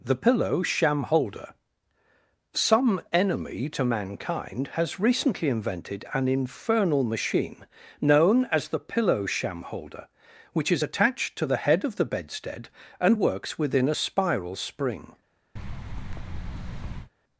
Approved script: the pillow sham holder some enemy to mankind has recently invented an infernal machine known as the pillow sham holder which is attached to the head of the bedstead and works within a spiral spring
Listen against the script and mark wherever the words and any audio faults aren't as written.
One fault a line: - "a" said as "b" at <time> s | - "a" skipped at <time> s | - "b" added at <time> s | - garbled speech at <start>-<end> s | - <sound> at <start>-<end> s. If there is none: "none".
- thud at 15.6-17.1 s